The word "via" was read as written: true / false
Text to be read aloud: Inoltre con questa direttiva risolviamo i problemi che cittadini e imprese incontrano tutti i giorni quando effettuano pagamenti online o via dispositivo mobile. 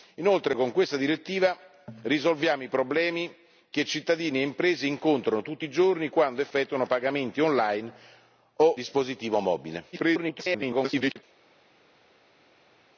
false